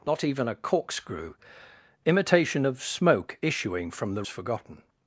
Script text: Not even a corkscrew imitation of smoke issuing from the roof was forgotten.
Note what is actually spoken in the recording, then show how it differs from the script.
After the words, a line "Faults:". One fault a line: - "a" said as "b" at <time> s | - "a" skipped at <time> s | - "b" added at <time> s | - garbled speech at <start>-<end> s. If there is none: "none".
Not even a corkscrew imitation of smoke issuing from the forgotten.
Faults:
- "roof was" skipped at 4.2 s